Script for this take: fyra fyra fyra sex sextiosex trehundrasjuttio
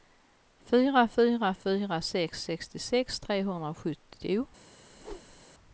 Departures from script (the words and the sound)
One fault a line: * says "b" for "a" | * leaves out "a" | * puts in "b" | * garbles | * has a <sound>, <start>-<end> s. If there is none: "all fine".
* has a whoosh, 4.9-5.5 s